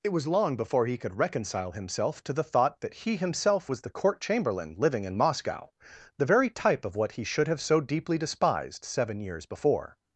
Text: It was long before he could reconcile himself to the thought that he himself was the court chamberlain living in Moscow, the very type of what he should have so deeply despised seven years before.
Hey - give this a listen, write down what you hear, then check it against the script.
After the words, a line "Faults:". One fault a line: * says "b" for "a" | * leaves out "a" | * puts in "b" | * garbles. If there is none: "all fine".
It was long before he could reconcile himself to the thought that he himself was the court chamberlain living in Moscow, the very type of what he should have so deeply despised seven years before.
Faults:
all fine